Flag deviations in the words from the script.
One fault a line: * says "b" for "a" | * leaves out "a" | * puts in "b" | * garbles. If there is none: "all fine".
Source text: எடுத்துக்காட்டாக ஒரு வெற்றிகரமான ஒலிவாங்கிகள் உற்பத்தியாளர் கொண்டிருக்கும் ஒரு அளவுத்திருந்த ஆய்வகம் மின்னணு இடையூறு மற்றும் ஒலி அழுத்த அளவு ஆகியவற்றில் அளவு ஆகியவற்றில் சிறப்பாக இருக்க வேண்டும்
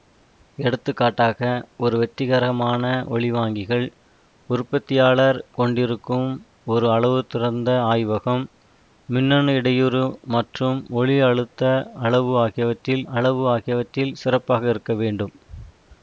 all fine